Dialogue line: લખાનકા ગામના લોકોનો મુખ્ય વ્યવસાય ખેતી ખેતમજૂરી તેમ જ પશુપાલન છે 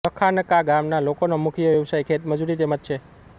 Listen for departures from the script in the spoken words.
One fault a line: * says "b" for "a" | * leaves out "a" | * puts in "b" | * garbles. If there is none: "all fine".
* leaves out "ખેતી"
* leaves out "પશુપાલન"